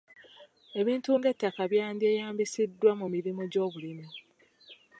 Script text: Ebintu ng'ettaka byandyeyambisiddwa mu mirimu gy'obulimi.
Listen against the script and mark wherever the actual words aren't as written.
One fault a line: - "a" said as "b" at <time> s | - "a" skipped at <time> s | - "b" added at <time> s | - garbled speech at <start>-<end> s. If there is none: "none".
none